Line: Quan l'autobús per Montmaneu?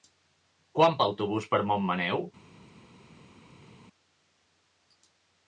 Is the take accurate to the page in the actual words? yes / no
yes